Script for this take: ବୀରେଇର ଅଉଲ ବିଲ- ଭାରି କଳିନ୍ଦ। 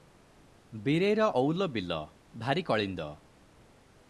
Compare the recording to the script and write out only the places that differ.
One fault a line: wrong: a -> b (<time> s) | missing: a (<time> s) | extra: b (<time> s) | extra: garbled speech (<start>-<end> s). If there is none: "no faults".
no faults